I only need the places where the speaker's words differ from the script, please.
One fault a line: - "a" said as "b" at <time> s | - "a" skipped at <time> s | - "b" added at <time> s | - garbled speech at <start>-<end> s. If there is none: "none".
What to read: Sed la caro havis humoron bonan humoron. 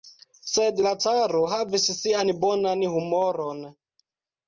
- "humoron" said as "sian" at 2.0 s